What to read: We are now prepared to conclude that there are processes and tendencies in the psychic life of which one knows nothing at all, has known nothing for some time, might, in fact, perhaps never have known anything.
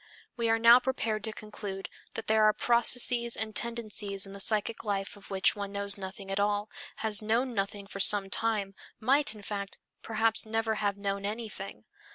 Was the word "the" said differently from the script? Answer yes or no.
no